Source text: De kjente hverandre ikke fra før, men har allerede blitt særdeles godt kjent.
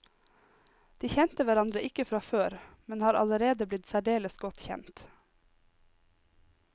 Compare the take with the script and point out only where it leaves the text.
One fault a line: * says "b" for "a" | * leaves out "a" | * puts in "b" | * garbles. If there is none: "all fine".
all fine